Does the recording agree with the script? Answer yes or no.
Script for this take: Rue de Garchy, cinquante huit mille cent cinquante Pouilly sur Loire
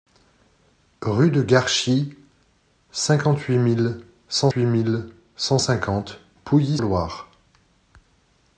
no